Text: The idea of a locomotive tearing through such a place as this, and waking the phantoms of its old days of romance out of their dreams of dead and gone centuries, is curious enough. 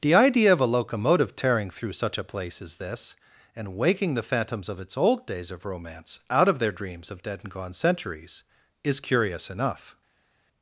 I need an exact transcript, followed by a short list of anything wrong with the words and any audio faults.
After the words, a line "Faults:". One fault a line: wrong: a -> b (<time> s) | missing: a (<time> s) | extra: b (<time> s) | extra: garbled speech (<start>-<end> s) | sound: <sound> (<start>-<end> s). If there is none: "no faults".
The idea of a locomotive tearing through such a place as this, and waking the phantoms of its old days of romance out of their dreams of dead and gone centuries, is curious enough.
Faults:
no faults